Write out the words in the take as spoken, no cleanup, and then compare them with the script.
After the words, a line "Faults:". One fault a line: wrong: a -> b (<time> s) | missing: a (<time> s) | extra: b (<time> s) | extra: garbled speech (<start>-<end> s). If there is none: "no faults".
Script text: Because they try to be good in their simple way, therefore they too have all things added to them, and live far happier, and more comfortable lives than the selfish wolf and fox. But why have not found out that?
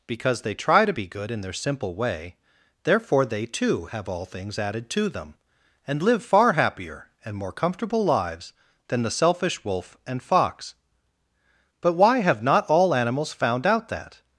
Because they try to be good in their simple way, therefore they too have all things added to them, and live far happier, and more comfortable lives than the selfish wolf and fox. But why have not all animals found out that?
Faults:
extra: all animals (12.7 s)